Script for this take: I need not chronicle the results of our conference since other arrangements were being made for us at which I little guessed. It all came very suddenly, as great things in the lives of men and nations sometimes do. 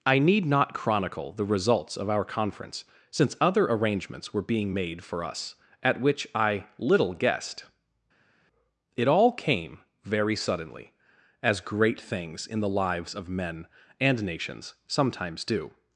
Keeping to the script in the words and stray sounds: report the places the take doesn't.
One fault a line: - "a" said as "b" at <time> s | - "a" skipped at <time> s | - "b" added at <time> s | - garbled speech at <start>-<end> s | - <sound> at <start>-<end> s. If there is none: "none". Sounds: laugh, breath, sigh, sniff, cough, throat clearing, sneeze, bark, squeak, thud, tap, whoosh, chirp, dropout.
none